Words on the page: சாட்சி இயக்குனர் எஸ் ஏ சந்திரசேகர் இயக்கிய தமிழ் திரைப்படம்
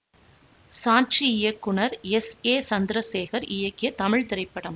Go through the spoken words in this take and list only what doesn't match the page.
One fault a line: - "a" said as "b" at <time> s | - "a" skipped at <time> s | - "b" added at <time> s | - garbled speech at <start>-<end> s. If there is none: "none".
none